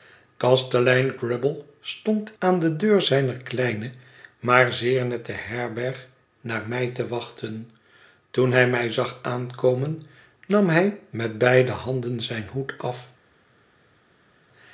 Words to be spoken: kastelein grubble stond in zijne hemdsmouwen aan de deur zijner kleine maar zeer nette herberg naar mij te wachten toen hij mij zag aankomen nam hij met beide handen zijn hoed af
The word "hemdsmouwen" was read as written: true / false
false